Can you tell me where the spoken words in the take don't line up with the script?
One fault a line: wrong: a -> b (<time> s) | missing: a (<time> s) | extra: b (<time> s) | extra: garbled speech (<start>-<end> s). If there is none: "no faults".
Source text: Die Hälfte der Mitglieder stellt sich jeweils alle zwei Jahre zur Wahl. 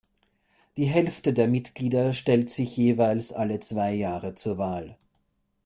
no faults